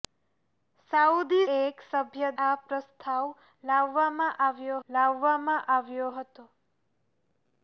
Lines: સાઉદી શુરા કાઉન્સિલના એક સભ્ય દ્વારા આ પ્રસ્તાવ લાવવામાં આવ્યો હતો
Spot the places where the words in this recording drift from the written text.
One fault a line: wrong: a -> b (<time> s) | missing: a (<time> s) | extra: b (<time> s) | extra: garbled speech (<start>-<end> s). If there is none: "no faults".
missing: શુરા કાઉન્સિલના (1.4 s)
missing: દ્વારા (2.3 s)
extra: લાવવામાં આવ્યો (4.9 s)